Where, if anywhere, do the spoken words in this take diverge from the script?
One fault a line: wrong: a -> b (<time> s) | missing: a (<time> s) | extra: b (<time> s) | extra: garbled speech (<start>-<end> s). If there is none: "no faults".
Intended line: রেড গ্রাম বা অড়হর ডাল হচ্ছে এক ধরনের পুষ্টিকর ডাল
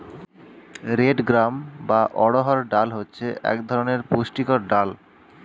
no faults